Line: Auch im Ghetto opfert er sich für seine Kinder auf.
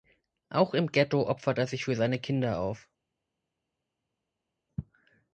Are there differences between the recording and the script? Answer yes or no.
no